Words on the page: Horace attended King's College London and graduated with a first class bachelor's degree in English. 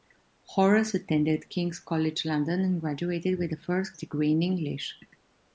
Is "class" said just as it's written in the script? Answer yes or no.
no